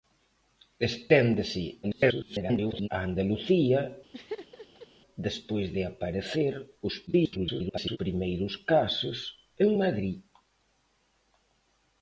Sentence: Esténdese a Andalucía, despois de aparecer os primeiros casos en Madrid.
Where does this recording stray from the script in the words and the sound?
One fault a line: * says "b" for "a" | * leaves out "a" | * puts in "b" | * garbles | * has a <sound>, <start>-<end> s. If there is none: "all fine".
* garbles
* has a laugh, 4.1-4.9 s
* garbles